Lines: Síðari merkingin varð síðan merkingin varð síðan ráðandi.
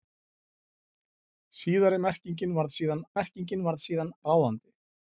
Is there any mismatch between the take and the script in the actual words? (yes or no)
no